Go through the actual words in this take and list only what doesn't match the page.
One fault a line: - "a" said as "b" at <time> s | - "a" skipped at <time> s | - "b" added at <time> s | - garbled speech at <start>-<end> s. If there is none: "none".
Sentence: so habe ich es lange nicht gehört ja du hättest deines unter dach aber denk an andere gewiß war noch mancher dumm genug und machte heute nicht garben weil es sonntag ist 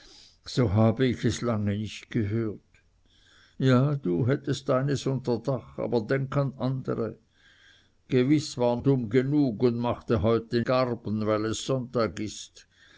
- "noch mancher" skipped at 8.8 s
- "nicht" skipped at 10.6 s